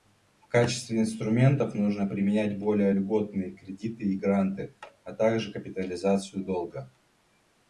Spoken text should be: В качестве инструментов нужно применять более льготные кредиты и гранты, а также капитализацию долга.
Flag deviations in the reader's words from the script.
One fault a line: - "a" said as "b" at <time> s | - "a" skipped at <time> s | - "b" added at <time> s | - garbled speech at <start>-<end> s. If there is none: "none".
none